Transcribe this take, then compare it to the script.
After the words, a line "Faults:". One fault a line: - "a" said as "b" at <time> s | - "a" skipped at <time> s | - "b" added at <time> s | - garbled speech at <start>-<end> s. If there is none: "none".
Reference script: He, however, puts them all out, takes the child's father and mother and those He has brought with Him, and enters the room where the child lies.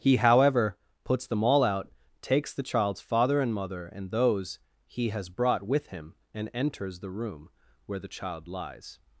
He, however, puts them all out, takes the child's father and mother and those He has brought with Him, and enters the room where the child lies.
Faults:
none